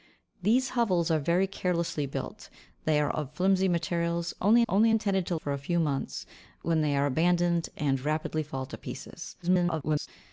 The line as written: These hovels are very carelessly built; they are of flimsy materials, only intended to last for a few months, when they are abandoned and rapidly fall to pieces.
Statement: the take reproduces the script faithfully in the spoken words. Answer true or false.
false